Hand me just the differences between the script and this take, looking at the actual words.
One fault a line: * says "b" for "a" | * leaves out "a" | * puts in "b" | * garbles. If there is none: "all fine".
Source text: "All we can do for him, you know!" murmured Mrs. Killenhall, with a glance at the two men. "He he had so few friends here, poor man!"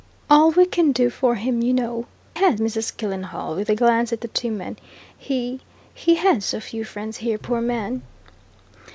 * says "had" for "murmured"